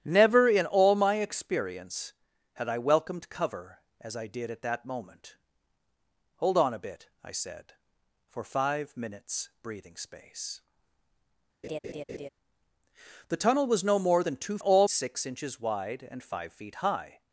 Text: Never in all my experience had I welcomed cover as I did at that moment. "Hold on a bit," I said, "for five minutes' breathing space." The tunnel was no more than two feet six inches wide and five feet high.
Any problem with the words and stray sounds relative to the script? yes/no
yes